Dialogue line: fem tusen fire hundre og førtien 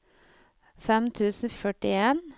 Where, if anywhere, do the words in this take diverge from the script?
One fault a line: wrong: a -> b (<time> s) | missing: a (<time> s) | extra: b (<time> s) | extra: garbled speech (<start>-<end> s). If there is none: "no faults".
missing: fire hundre (1.5 s)